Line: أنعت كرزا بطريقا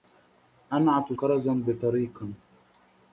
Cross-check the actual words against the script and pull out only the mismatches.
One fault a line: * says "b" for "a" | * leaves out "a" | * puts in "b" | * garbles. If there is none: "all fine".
all fine